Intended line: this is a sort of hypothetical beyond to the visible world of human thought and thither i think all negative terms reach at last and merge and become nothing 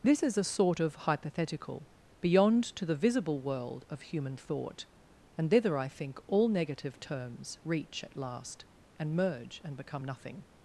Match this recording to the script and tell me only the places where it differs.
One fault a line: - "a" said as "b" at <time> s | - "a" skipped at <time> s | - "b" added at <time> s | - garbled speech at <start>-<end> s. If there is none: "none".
none